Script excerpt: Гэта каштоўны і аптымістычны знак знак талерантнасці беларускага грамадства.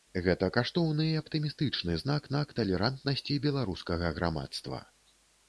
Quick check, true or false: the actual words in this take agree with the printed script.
true